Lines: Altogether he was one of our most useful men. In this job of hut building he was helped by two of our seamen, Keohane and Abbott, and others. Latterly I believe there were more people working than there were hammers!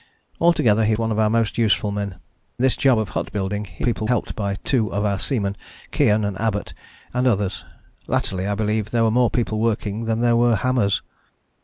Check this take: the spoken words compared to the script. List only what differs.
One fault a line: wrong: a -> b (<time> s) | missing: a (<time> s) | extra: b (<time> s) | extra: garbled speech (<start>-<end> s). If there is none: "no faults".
missing: was (0.9 s)
missing: In (2.2 s)
wrong: was -> people (3.8 s)